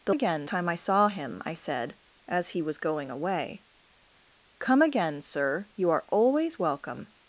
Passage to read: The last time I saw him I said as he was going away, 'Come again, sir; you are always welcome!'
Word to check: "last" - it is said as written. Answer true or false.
false